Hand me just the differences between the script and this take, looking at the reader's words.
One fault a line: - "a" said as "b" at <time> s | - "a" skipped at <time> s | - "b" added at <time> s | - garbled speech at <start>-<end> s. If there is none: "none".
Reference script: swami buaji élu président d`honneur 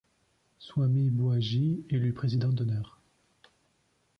none